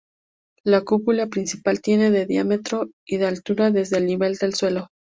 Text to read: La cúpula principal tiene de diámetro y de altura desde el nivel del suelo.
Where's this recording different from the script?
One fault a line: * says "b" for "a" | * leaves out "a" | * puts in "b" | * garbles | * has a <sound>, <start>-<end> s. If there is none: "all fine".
all fine